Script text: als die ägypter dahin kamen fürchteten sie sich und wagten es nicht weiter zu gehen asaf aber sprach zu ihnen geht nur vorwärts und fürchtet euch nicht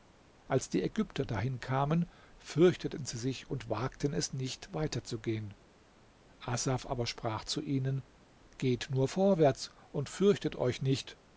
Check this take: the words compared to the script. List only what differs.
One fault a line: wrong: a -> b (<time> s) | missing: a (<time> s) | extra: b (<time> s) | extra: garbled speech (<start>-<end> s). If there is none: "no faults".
no faults